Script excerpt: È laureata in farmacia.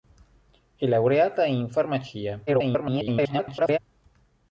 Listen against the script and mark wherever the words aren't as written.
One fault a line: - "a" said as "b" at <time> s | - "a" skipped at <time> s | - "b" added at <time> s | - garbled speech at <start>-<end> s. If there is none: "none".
- garbled speech at 2.5-3.8 s